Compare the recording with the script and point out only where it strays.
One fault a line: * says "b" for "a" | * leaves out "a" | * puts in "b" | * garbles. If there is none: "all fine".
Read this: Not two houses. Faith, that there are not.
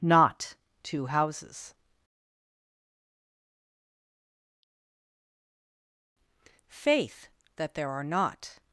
all fine